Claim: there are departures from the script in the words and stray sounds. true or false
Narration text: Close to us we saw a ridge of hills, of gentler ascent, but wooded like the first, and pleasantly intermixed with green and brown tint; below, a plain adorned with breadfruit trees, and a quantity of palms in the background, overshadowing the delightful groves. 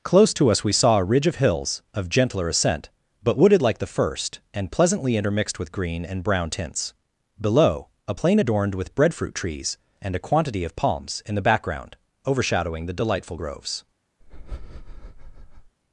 true